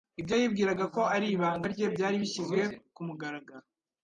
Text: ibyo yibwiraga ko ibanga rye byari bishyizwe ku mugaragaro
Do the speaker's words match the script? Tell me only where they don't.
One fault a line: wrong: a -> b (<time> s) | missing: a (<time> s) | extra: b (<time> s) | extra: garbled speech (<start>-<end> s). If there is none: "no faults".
extra: ari (1.1 s)